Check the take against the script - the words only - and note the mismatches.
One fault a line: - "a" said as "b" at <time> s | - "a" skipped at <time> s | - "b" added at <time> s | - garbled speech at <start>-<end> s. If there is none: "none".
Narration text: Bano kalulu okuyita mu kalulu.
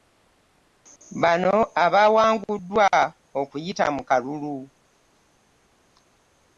- "kalulu" said as "abawanguddwa" at 1.8 s